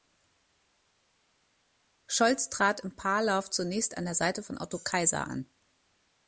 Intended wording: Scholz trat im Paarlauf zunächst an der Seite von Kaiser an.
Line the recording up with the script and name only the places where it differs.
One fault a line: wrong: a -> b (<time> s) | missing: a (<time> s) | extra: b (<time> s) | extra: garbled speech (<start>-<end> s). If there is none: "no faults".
extra: Otto (4.6 s)